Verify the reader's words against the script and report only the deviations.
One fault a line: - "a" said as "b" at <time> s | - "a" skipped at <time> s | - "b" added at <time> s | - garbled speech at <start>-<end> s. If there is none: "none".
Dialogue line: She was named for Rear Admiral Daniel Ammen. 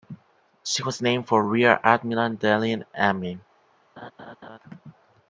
none